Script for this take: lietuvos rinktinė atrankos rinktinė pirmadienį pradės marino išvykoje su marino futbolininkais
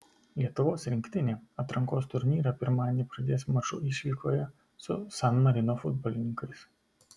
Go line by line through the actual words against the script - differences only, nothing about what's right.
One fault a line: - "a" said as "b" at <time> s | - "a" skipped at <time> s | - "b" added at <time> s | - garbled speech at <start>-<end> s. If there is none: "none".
- "rinktinė" said as "turnyrą" at 2.1 s
- "marino" said as "maču" at 3.6 s
- "san" added at 5.2 s